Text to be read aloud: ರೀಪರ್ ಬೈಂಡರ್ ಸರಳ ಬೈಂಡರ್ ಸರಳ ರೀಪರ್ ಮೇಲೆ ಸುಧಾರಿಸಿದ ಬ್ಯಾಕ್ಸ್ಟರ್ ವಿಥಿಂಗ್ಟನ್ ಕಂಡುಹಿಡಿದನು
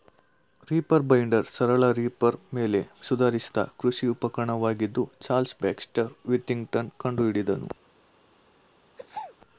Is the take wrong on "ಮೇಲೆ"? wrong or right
right